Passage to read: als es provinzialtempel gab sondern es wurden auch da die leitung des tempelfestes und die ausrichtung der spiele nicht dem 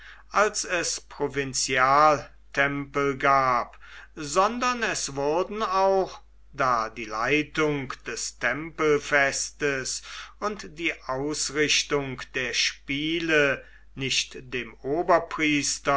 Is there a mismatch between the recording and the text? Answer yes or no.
no